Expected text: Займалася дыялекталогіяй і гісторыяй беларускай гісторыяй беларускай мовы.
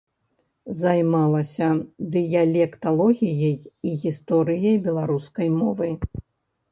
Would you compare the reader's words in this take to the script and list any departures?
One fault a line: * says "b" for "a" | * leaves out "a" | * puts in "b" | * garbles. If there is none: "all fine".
* leaves out "гісторыяй беларускай"